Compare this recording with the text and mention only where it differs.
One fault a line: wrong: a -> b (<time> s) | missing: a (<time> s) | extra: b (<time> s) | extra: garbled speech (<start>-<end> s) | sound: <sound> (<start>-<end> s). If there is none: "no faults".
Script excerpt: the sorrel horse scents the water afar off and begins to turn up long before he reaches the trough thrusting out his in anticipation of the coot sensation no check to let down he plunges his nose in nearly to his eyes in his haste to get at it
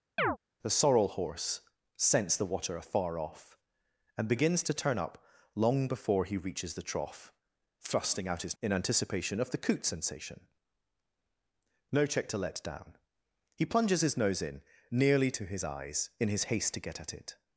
sound: chirp (0.2-0.4 s)